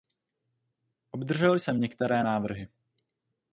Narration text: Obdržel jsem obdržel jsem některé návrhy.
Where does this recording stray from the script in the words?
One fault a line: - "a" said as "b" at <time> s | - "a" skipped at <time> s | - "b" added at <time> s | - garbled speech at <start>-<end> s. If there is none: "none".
- "obdržel jsem" skipped at 1.8 s